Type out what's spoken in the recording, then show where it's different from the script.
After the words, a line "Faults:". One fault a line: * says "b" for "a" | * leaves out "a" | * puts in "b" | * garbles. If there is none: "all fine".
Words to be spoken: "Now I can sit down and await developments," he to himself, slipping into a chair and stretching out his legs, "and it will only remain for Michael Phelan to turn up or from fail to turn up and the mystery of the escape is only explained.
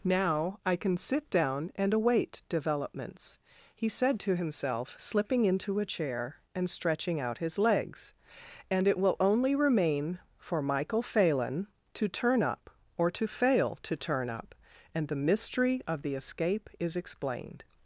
"Now I can sit down and await developments," he said to himself, slipping into a chair and stretching out his legs, "and it will only remain for Michael Phelan to turn up or to fail to turn up and the mystery of the escape is explained.
Faults:
* puts in "said"
* says "to" for "from"
* leaves out "only"